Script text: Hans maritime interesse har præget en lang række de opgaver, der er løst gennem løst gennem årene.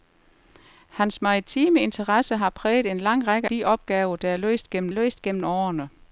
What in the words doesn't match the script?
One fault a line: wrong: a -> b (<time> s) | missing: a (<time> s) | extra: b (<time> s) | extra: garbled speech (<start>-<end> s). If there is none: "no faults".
no faults